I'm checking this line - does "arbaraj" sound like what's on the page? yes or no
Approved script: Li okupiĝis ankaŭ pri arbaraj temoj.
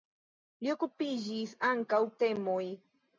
no